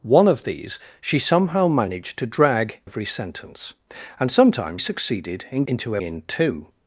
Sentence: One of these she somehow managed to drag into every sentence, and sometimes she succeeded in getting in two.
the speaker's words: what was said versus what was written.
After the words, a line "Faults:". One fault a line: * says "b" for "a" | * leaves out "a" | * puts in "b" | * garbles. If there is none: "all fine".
One of these she somehow managed to drag every sentence, and sometimes succeeded in into in two.
Faults:
* leaves out "into"
* leaves out "she"
* says "into" for "getting"